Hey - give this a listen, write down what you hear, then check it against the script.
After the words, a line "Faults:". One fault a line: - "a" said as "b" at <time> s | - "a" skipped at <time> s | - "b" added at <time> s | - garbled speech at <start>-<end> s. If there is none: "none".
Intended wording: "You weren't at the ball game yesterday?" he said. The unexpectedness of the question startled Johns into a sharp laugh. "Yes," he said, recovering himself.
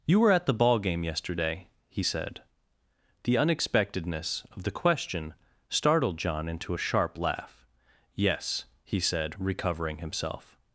"You were at the ball game yesterday?" he said. The unexpectedness of the question startled John into a sharp laugh. "Yes," he said, recovering himself.
Faults:
- "weren't" said as "were" at 0.2 s
- "Johns" said as "John" at 6.2 s